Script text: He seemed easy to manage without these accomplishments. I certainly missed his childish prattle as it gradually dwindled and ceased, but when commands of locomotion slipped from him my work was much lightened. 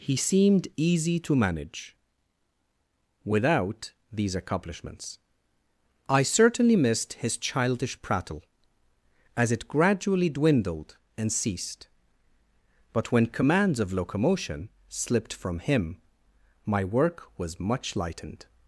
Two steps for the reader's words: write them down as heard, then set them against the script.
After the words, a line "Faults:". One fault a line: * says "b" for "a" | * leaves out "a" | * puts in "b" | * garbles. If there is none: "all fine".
He seemed easy to manage without these accomplishments. I certainly missed his childish prattle as it gradually dwindled and ceased, but when commands of locomotion slipped from him my work was much lightened.
Faults:
all fine